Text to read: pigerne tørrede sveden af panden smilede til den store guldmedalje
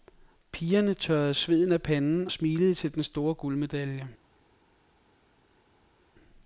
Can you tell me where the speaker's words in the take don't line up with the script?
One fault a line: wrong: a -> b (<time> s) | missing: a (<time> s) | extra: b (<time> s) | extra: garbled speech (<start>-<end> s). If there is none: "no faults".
no faults